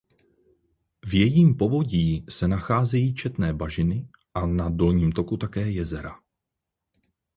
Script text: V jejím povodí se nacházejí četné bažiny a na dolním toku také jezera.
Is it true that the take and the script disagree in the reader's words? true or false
false